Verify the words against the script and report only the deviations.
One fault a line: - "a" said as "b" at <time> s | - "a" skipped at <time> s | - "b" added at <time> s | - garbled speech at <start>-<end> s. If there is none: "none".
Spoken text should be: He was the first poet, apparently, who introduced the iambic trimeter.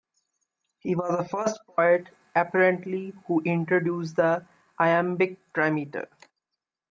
none